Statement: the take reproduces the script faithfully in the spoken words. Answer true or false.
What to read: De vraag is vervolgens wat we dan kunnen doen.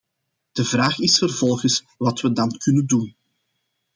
true